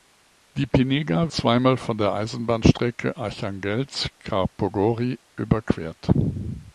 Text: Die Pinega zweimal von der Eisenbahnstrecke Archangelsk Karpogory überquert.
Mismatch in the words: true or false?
false